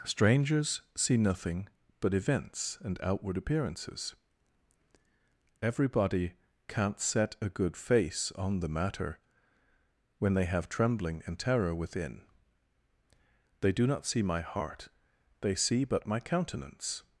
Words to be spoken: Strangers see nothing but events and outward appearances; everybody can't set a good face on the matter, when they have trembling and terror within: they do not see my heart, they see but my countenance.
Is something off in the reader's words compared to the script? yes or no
no